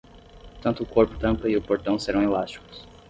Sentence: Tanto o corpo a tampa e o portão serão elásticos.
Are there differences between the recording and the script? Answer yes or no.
no